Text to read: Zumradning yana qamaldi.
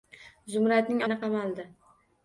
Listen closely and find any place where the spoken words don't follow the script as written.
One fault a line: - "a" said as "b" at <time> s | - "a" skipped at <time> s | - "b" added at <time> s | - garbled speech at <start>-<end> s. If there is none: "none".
none